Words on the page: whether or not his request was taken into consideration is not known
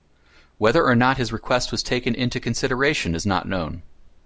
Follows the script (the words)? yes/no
yes